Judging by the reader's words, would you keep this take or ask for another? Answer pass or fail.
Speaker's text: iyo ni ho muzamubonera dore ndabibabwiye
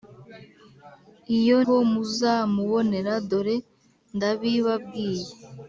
fail